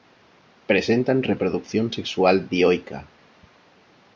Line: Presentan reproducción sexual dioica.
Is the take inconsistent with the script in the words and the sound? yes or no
no